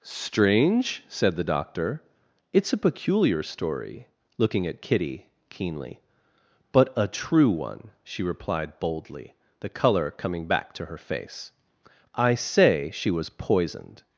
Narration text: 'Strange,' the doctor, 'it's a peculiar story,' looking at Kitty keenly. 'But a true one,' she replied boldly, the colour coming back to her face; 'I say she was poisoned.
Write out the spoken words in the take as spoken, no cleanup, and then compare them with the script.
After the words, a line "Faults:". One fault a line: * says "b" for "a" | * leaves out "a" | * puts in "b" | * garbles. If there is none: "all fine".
'Strange,' said the doctor, 'it's a peculiar story,' looking at Kitty keenly. 'But a true one,' she replied boldly, the colour coming back to her face; 'I say she was poisoned.
Faults:
* puts in "said"